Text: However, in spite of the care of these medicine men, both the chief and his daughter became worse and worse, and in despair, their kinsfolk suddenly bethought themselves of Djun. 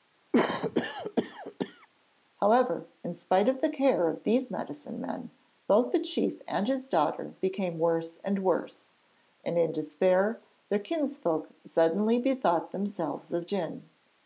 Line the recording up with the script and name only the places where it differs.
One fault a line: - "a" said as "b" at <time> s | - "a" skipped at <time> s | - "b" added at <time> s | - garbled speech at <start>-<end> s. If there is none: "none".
none